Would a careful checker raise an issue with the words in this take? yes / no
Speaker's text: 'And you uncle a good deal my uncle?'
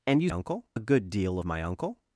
no